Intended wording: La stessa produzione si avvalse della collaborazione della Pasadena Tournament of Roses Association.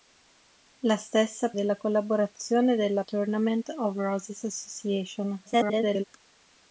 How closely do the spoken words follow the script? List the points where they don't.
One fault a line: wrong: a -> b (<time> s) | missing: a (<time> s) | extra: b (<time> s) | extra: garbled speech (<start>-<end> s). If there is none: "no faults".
missing: produzione si avvalse (1.5 s)
missing: Pasadena (3.0 s)
extra: garbled speech (5.5-6.0 s)